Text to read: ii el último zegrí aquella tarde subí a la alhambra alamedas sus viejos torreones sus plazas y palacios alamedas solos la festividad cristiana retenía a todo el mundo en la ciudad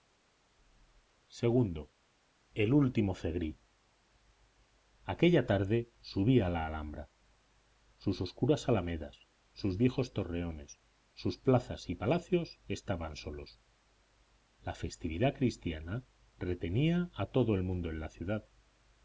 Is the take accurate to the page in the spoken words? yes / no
no